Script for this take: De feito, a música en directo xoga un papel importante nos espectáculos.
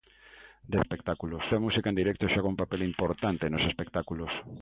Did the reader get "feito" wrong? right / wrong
wrong